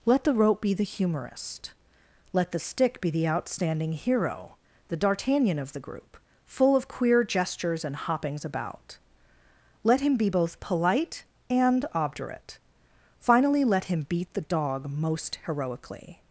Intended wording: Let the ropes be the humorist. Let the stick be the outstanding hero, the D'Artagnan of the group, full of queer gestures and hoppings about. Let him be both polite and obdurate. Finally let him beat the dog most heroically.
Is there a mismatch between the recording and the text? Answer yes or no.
yes